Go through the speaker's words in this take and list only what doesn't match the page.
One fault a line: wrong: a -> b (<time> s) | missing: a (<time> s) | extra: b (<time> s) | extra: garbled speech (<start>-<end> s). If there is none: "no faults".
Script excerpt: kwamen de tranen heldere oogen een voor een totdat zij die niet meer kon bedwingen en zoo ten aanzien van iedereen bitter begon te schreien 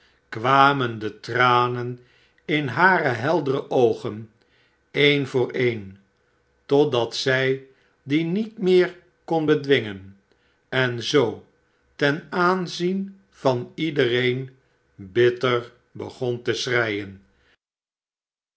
extra: in hare (2.5 s)